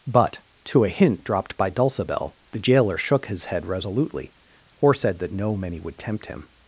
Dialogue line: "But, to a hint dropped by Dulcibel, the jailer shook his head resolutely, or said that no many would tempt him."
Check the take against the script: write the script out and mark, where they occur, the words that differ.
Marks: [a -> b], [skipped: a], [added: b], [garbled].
"But, to a hint dropped by Dulcibel, the jailer shook his head resolutely, or said that no many would tempt him."